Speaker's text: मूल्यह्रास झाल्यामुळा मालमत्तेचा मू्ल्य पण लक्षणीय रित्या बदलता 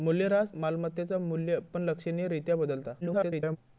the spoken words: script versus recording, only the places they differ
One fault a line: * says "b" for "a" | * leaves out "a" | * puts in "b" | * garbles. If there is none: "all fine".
* leaves out "झाल्यामुळा"
* garbles